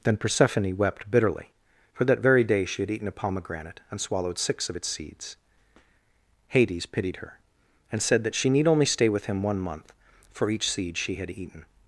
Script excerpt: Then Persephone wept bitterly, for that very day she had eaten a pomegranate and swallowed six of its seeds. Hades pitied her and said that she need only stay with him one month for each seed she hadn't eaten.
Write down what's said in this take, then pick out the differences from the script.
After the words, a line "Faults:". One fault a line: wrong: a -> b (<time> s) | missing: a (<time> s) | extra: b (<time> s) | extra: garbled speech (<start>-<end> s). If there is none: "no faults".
Then Persephone wept bitterly, for that very day she had eaten a pomegranate and swallowed six of its seeds. Hades pitied her and said that she need only stay with him one month for each seed she had eaten.
Faults:
wrong: hadn't -> had (11.1 s)